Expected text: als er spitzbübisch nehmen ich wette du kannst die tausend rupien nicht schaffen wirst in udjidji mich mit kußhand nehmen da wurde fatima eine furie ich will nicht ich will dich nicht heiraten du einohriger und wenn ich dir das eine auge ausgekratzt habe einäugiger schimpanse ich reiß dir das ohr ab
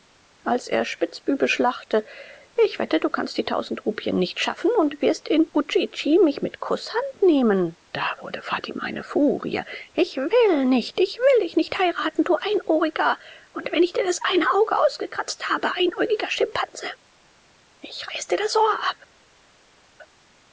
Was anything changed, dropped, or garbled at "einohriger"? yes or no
no